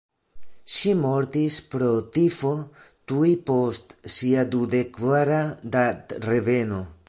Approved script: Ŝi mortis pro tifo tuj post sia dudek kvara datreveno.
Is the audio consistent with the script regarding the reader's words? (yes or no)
yes